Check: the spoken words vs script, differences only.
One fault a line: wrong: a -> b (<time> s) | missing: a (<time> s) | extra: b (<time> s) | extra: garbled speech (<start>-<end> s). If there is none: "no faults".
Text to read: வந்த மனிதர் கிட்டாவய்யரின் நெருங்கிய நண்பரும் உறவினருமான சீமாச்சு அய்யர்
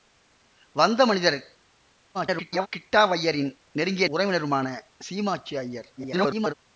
extra: garbled speech (2.1-2.7 s)
missing: நண்பரும் (4.1 s)
extra: garbled speech (6.0-6.5 s)